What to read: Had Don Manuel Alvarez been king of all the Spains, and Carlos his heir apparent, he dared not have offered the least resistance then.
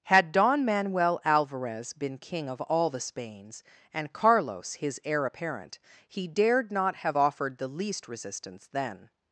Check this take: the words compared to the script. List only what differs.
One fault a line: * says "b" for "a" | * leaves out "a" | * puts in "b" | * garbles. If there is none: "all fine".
all fine